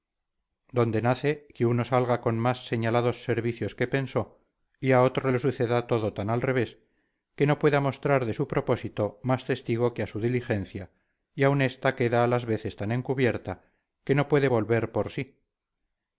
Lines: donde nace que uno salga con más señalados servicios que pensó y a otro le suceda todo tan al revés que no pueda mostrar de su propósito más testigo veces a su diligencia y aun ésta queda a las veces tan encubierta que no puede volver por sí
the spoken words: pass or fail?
fail